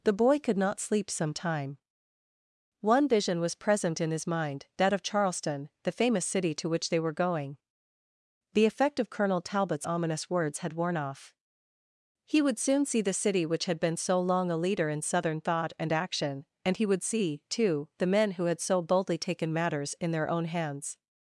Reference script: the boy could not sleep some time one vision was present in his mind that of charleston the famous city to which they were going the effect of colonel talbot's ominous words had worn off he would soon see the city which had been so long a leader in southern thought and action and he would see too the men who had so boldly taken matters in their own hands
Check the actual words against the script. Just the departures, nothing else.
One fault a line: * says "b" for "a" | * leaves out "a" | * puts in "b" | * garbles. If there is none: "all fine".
all fine